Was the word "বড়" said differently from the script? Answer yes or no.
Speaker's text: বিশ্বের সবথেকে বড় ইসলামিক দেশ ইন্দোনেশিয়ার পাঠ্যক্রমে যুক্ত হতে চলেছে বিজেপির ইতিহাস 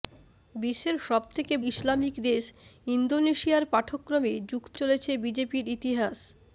yes